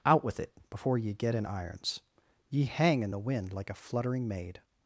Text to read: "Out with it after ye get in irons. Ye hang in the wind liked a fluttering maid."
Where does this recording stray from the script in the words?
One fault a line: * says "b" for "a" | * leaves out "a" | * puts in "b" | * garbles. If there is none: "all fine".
* says "before" for "after"
* says "like" for "liked"